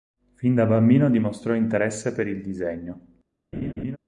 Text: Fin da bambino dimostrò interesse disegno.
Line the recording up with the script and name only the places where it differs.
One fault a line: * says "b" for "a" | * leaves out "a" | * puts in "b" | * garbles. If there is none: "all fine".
* puts in "per il"